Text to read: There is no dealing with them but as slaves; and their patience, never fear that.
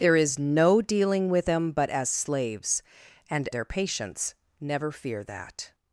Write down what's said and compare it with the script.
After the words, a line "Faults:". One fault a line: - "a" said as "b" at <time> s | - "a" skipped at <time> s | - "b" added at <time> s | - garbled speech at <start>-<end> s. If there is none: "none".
There is no dealing with them but as slaves; and their patience, never fear that.
Faults:
none